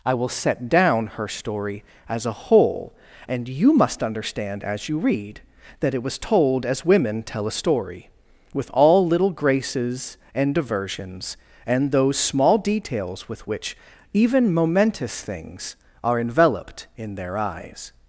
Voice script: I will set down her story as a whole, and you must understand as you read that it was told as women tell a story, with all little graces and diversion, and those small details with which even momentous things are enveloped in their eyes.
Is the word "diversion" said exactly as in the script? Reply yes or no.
no